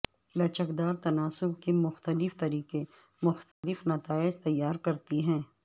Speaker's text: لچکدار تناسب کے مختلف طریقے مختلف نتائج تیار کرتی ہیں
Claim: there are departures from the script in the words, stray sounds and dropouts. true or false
true